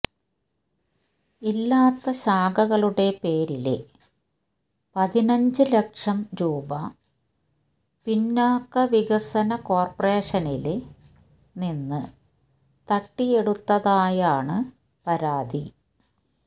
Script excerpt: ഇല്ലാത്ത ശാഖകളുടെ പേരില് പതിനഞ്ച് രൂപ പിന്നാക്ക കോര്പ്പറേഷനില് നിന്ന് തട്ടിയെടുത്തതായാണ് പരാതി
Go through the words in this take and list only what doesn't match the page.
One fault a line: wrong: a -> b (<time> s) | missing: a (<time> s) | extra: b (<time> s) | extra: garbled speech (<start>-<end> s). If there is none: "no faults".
extra: ലക്ഷം (5.7 s)
extra: വികസന (8.9 s)